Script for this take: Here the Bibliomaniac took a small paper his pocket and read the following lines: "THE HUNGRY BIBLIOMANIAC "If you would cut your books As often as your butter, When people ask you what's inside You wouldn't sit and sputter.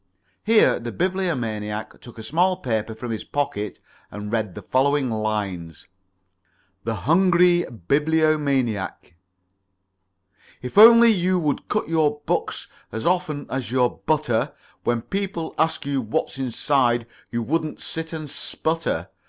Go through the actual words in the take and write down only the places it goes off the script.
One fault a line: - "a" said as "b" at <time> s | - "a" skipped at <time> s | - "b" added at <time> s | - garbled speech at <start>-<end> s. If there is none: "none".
- "from" added at 3.0 s
- "only" added at 10.8 s